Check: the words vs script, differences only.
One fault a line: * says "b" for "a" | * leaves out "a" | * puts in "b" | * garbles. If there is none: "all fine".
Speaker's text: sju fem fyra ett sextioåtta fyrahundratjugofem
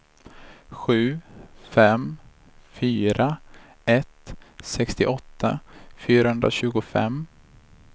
all fine